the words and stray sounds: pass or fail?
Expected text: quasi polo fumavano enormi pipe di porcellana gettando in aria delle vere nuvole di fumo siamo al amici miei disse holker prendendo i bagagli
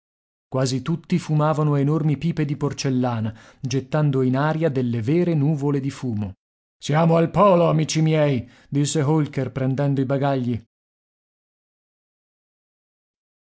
fail